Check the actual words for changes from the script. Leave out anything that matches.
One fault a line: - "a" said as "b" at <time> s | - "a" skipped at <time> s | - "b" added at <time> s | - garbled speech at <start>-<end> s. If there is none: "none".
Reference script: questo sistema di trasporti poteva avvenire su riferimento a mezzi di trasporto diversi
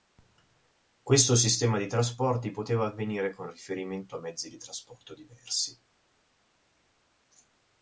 - "su" said as "con" at 3.4 s